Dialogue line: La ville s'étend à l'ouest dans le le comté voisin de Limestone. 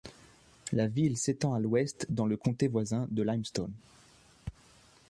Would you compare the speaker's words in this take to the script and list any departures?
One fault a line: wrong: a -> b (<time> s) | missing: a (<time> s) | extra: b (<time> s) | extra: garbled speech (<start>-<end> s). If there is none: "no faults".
missing: le (2.4 s)